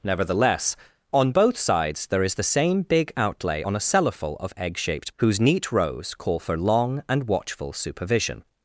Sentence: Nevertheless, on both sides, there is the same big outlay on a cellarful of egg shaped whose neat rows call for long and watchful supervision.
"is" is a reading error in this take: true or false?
false